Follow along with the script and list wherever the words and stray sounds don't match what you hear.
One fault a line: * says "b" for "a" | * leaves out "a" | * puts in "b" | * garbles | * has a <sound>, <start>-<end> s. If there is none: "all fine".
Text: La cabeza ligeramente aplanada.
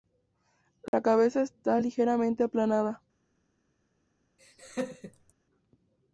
* has a dropout, 0.9-0.9 s
* puts in "está"
* has a laugh, 4.4-5.3 s